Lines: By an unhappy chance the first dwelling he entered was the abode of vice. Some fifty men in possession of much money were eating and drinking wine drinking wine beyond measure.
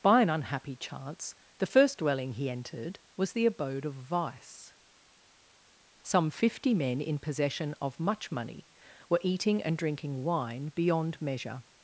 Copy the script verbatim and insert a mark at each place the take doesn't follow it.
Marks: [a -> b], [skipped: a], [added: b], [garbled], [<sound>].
By an unhappy chance the first dwelling he entered was the abode of vice. Some fifty men in possession of much money were eating and drinking wine [skipped: drinking wine] beyond measure.